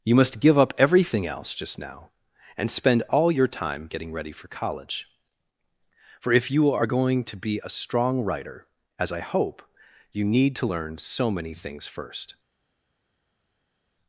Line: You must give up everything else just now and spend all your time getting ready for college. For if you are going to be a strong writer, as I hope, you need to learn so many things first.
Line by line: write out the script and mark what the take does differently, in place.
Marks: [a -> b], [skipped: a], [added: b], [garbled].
You must give up everything else just now and spend all your time getting ready for college. For if you are going to be a strong writer, as I hope, you need to learn so many things first.